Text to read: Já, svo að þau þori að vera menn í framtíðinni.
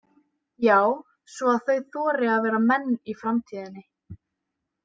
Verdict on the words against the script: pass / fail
pass